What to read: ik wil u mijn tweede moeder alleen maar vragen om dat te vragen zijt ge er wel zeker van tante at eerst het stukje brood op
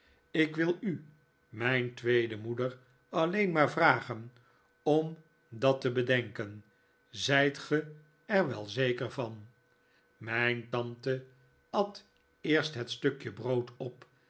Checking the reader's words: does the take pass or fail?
fail